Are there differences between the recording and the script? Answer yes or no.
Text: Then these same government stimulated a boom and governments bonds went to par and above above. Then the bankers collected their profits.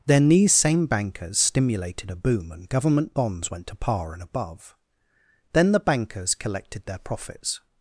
yes